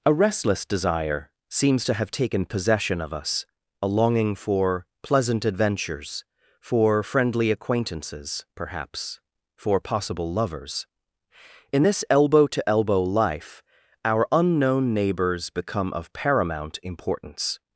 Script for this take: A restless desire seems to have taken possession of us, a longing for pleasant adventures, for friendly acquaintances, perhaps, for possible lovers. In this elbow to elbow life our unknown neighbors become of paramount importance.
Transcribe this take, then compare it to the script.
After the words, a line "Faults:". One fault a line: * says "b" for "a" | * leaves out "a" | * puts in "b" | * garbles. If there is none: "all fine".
A restless desire seems to have taken possession of us, a longing for pleasant adventures, for friendly acquaintances, perhaps, for possible lovers. In this elbow to elbow life our unknown neighbors become of paramount importance.
Faults:
all fine